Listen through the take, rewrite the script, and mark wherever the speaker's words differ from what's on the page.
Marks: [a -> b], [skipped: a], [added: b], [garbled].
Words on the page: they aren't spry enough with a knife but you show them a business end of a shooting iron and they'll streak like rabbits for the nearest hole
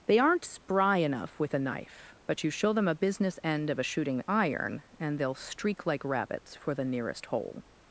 they aren't spry enough with a knife but you show them a business end of a shooting iron and they'll streak like rabbits for the nearest hole